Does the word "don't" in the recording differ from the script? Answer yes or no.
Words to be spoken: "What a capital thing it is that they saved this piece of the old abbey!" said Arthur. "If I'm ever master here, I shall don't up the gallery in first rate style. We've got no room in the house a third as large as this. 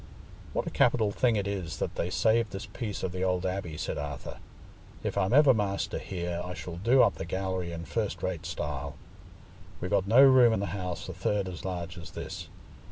yes